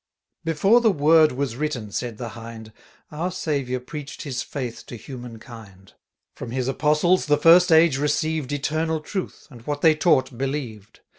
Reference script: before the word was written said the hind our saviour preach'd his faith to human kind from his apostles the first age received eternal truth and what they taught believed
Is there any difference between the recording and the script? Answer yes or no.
no